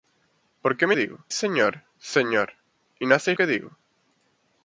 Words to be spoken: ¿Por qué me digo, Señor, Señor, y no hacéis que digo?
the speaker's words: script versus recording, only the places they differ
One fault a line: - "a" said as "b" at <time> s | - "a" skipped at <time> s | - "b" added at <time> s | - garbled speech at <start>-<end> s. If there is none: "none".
none